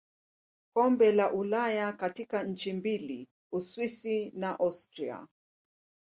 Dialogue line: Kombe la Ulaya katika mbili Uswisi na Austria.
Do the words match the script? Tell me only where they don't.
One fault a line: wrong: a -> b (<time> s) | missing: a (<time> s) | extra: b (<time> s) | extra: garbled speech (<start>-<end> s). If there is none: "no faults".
extra: nchi (2.4 s)